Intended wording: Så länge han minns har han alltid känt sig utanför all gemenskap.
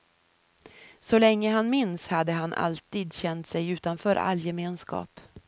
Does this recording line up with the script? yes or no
no